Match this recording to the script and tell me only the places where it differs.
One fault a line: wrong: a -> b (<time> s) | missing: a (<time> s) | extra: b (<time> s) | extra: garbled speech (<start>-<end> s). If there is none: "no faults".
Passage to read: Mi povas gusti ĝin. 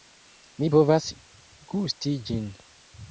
no faults